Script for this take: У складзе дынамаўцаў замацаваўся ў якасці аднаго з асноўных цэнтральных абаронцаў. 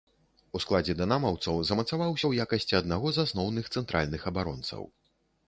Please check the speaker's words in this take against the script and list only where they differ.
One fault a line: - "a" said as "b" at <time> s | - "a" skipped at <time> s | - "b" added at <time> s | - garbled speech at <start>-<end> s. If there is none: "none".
none